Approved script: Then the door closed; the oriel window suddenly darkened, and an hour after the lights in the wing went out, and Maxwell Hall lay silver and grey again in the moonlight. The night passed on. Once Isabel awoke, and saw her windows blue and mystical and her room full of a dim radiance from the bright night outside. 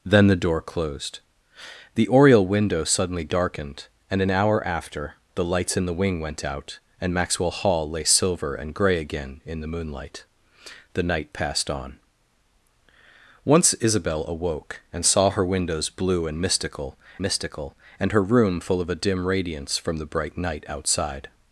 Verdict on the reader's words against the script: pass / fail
fail